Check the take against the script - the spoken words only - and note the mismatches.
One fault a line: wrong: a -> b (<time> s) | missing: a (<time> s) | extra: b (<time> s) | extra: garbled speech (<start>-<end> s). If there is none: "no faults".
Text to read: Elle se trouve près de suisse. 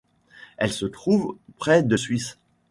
no faults